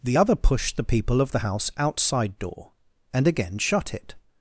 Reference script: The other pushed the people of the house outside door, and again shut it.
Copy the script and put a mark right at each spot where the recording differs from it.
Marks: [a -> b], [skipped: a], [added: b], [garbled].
The other pushed the people of the house outside door, and again shut it.